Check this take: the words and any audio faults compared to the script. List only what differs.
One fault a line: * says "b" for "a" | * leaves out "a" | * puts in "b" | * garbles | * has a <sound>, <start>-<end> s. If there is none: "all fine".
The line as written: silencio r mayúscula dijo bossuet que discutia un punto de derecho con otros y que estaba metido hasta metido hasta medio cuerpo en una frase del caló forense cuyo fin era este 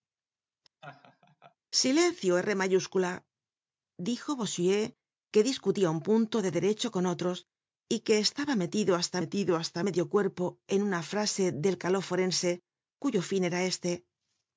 * has a laugh, 0.8-1.6 s